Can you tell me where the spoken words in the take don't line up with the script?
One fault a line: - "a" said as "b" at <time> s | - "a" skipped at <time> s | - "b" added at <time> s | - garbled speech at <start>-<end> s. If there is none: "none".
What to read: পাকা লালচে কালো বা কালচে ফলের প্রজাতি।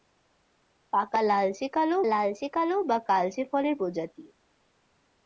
- "লালচে কালো" added at 2.0 s